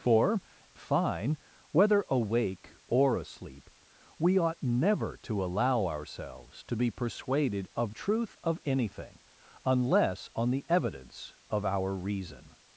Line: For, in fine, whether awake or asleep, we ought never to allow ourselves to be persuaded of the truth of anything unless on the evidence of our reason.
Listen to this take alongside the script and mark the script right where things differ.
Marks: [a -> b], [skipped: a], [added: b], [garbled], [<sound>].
For, [skipped: in] fine, whether awake or asleep, we ought never to allow ourselves to be persuaded of [skipped: the] truth of anything unless on the evidence of our reason.